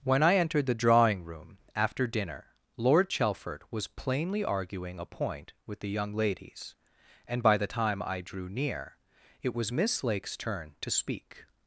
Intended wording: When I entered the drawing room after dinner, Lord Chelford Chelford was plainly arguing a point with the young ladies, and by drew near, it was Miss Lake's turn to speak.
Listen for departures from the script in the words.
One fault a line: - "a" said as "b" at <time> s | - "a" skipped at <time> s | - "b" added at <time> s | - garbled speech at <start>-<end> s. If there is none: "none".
- "Chelford" skipped at 3.6 s
- "the time I" added at 7.6 s